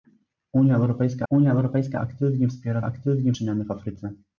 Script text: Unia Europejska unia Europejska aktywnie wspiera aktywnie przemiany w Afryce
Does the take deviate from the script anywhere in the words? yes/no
no